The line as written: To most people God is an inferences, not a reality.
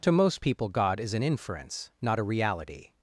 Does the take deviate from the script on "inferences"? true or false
true